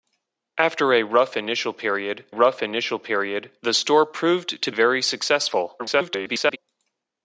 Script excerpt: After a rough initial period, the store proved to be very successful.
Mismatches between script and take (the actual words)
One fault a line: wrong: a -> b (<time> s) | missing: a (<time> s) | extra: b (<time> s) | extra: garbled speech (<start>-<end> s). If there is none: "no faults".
extra: rough initial period (2.3 s)
missing: be (4.7 s)
extra: garbled speech (5.8-6.6 s)